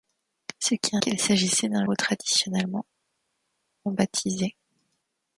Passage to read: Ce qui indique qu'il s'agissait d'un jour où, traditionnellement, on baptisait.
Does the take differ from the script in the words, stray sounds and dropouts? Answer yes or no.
yes